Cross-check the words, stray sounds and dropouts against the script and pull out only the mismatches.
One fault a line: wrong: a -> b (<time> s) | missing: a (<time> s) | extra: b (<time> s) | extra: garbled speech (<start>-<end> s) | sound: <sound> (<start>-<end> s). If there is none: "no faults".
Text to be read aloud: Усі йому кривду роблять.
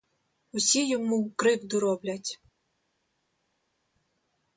no faults